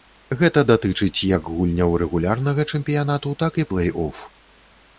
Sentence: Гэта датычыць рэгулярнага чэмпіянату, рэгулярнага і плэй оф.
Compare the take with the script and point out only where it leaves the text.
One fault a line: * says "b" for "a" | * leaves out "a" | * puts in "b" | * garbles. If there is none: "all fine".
* puts in "як гульняў"
* says "так" for "рэгулярнага"